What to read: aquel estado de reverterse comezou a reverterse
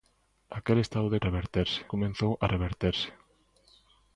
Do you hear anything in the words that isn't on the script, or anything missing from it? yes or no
no